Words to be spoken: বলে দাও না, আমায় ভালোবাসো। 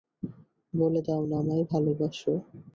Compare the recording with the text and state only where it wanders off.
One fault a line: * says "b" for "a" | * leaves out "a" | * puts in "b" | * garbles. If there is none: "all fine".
all fine